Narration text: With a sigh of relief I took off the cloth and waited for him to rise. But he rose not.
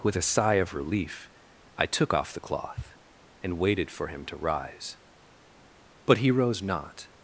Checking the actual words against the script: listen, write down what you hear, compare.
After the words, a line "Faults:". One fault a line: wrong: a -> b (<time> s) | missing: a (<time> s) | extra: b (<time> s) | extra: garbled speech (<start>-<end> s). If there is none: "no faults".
With a sigh of relief I took off the cloth and waited for him to rise. But he rose not.
Faults:
no faults